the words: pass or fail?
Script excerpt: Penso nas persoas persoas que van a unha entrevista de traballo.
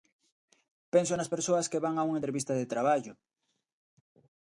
fail